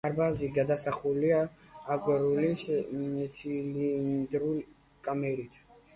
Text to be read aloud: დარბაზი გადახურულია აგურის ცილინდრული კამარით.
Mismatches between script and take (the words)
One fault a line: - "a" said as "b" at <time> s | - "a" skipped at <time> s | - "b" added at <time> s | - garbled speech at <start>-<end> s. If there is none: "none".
none